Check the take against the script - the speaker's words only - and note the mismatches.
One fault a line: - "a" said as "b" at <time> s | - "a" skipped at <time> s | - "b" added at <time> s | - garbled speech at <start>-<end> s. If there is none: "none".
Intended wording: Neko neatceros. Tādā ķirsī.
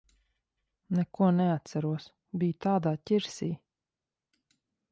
- "Biju" added at 2.4 s